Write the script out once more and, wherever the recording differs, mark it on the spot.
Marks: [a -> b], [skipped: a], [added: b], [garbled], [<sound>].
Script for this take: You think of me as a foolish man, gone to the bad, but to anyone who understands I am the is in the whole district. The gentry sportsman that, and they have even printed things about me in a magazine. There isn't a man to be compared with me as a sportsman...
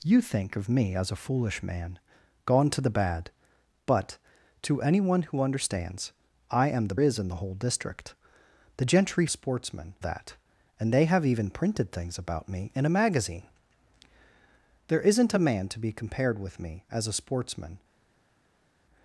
You think of me as a foolish man, gone to the bad, but to anyone who understands I am the is in the whole district. The gentry sportsman that, and they have even printed things about me in a magazine. There isn't a man to be compared with me as a sportsman...